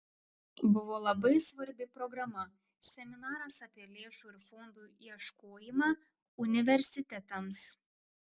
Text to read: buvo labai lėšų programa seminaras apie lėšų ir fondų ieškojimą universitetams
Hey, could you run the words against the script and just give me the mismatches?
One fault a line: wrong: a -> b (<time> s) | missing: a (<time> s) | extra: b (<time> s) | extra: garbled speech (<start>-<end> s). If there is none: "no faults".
wrong: lėšų -> svarbi (1.5 s)